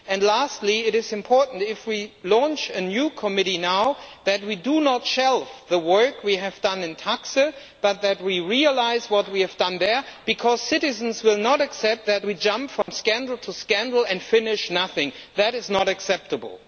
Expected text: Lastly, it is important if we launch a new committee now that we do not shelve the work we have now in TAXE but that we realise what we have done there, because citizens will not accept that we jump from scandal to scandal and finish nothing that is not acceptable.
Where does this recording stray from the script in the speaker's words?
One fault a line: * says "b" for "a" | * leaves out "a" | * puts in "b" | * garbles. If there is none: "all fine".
* says "done" for "now"